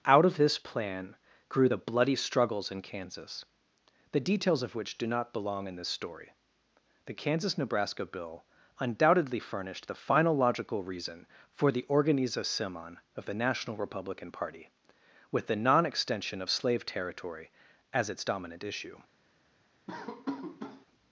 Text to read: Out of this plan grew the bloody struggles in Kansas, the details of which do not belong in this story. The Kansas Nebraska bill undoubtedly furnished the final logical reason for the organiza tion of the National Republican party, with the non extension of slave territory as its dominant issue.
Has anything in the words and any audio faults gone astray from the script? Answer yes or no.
yes